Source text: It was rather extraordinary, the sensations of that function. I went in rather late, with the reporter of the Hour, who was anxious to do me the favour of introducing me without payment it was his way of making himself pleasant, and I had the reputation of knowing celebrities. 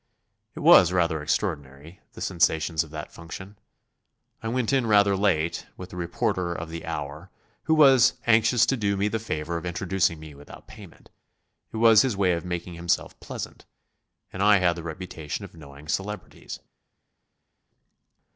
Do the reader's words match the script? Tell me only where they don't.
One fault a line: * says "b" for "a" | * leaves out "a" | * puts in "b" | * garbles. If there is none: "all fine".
all fine